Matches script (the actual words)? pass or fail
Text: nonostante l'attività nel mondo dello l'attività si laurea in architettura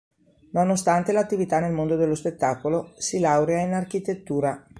fail